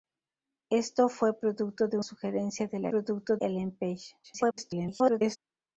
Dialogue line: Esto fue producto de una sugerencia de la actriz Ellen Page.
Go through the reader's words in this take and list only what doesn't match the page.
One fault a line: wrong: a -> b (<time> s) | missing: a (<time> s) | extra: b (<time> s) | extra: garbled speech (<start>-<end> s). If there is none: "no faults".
missing: una (2.0 s)
wrong: actriz -> producto (2.9 s)
extra: garbled speech (4.2-5.4 s)